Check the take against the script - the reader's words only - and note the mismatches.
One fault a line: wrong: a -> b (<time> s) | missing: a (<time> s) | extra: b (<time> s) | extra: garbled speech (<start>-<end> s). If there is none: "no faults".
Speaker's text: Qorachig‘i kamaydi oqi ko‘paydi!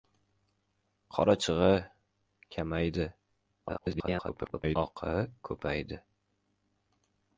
extra: garbled speech (3.7-4.8 s)